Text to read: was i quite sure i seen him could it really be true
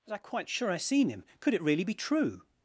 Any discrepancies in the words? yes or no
no